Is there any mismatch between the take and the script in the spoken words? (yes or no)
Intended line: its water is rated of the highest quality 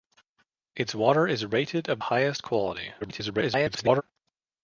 yes